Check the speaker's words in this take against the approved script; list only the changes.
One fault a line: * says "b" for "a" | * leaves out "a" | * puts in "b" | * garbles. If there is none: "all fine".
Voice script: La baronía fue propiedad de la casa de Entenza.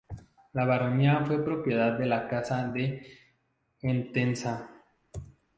all fine